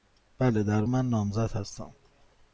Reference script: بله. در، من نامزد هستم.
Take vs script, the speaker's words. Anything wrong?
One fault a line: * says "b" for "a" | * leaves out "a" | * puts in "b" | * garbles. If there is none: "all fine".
all fine